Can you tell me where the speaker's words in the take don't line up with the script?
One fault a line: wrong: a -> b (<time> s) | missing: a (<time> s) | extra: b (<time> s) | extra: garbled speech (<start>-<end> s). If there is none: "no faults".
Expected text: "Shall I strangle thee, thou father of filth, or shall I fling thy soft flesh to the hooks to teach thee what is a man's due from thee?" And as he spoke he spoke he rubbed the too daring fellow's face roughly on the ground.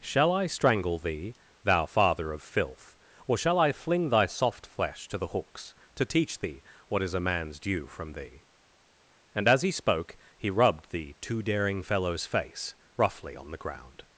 missing: spoke he (10.5 s)